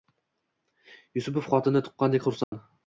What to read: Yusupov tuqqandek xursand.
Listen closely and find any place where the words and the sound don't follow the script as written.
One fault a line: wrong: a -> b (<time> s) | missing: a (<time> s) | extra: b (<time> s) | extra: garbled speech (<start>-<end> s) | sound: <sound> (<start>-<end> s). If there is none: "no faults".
extra: xotini (1.5 s)
sound: dropout (2.4-2.5 s)